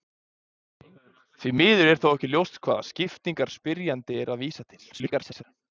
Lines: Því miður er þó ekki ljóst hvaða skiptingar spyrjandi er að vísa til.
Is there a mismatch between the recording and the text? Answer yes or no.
yes